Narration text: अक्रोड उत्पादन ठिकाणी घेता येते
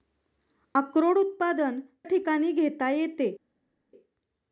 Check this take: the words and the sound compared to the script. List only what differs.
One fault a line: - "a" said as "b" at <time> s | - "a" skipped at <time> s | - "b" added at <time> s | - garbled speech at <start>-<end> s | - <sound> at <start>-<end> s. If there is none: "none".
none